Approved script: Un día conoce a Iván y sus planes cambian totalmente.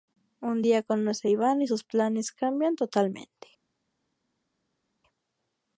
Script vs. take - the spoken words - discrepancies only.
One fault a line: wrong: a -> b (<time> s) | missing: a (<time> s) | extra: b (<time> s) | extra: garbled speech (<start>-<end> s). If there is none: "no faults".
no faults